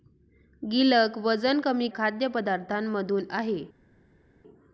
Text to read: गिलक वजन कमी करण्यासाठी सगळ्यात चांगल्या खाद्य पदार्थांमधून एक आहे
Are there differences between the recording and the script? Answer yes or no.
yes